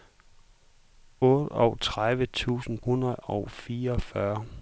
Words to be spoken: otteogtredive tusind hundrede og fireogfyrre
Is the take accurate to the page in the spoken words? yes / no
yes